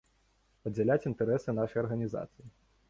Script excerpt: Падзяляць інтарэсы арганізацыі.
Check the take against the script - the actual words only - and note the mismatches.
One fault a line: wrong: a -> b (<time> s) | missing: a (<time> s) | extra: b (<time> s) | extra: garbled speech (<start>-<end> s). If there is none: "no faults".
extra: нашай (1.6 s)